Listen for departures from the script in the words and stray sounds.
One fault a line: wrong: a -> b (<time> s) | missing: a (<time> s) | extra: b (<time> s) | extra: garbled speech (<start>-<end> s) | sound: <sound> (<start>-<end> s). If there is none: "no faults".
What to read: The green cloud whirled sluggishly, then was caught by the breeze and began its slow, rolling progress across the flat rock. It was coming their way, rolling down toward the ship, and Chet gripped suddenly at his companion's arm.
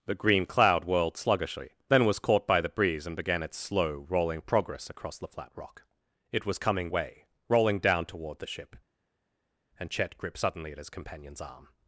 missing: their (6.9 s)